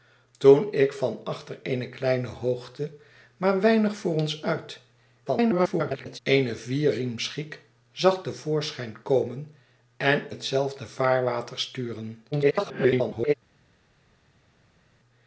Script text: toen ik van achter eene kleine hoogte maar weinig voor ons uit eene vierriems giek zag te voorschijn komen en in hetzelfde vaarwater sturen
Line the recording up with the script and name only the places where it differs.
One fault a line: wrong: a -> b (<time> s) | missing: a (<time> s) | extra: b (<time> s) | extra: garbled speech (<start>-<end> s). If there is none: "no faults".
extra: garbled speech (5.3-6.2 s)
missing: in (10.3 s)
extra: garbled speech (12.3-13.3 s)